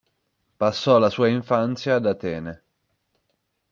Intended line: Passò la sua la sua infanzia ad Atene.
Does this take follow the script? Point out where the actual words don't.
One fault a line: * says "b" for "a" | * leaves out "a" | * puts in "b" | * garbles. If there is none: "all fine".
* leaves out "la sua"